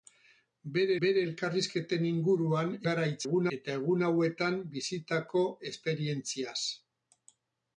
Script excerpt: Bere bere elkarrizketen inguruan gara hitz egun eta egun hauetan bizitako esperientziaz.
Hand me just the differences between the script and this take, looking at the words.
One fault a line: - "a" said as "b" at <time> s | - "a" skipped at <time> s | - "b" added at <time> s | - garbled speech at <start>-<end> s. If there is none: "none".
none